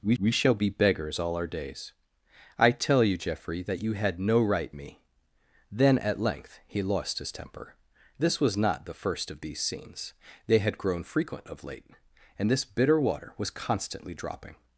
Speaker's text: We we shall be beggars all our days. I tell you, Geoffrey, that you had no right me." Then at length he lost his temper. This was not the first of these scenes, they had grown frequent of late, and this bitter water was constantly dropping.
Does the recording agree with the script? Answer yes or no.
yes